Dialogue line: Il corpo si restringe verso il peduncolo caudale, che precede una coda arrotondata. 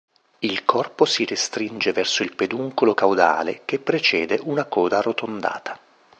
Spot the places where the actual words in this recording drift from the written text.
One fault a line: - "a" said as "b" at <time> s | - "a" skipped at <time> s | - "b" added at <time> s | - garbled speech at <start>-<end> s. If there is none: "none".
none